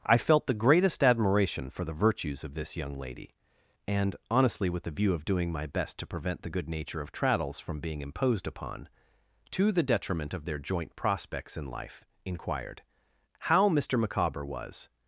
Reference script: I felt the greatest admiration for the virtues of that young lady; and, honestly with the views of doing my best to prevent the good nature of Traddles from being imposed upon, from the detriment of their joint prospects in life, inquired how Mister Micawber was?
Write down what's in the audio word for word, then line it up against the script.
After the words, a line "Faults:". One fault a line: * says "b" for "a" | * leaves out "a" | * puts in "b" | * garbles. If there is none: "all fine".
I felt the greatest admiration for the virtues of this young lady; and, honestly with the view of doing my best to prevent the good nature of Traddles from being imposed upon, to the detriment of their joint prospects in life, inquired how Mister Micawber was?
Faults:
* says "this" for "that"
* says "view" for "views"
* says "to" for "from"